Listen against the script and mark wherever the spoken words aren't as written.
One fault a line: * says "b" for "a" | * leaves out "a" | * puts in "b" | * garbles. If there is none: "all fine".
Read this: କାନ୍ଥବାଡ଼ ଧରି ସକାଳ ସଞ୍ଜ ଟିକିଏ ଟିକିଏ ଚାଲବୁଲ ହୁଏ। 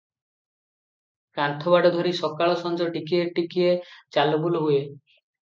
all fine